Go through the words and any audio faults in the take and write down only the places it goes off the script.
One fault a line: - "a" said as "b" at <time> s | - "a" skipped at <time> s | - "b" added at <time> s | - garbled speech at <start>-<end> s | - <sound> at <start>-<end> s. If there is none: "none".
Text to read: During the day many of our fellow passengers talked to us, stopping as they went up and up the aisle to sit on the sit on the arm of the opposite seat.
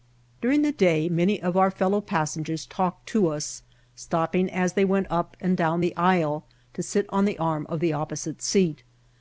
- "up" said as "down" at 5.5 s
- "sit on the" skipped at 7.4 s